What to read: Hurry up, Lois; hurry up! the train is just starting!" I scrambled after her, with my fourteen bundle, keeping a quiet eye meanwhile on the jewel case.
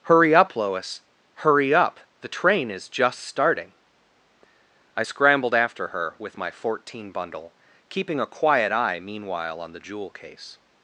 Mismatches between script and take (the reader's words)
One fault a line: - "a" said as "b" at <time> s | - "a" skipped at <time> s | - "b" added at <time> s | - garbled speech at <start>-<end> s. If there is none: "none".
none